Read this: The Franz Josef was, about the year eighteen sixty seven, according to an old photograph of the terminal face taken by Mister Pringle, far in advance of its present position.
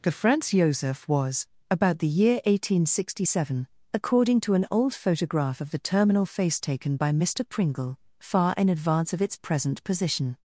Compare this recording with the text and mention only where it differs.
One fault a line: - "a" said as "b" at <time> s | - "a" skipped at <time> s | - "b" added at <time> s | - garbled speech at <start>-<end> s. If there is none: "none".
none